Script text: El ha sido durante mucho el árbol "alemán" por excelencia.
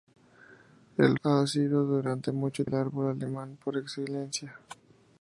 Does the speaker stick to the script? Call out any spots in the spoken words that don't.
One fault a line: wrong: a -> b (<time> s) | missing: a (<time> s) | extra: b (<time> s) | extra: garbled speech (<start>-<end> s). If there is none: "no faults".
no faults